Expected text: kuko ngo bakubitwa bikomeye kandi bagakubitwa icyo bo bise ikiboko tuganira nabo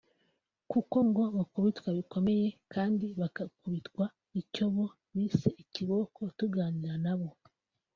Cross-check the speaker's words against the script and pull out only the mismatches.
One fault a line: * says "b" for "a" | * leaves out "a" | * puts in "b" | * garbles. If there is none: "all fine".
all fine